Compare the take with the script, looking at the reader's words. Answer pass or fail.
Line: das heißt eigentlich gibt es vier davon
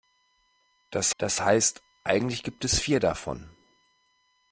fail